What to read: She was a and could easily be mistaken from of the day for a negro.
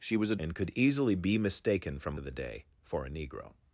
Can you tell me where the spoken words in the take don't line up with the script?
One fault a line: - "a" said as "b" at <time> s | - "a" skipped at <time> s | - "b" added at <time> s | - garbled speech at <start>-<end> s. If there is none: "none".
none